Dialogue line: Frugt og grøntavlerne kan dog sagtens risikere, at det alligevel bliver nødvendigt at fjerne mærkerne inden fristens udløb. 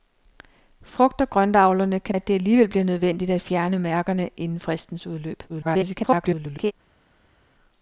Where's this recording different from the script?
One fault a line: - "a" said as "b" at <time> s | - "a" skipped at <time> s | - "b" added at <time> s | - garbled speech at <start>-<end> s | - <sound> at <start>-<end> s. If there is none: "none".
- "dog sagtens risikere" skipped at 2.1 s
- garbled speech at 5.5-6.7 s